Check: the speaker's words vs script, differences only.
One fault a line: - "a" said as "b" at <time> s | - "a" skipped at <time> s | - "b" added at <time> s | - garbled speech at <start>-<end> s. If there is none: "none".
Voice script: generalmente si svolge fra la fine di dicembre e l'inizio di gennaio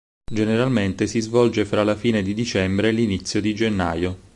none